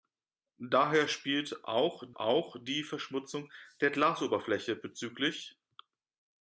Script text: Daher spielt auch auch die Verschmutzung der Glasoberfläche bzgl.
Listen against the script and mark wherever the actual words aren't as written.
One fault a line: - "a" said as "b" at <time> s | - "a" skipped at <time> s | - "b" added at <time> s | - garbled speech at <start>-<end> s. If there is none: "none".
none